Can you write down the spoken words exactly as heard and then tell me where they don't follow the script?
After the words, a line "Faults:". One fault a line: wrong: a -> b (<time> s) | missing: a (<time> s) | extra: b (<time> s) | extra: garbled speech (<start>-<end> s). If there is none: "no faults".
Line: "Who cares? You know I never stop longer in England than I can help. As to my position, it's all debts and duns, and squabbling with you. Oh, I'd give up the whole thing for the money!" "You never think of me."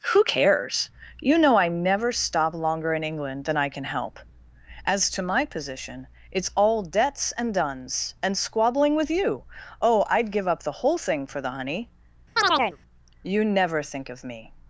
"Who cares? You know I never stop longer in England than I can help. As to my position, it's all debts and duns, and squabbling with you. Oh, I'd give up the whole thing for the honey!" "You never think of me."
Faults:
wrong: money -> honey (11.5 s)